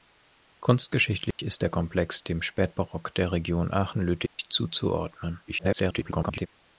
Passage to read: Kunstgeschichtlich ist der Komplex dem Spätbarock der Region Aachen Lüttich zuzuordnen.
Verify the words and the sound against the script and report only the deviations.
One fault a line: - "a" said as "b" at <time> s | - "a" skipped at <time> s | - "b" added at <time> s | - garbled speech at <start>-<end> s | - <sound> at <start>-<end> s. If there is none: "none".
- dropout at 1.3-1.4 s
- dropout at 4.3-4.4 s
- garbled speech at 5.5-6.5 s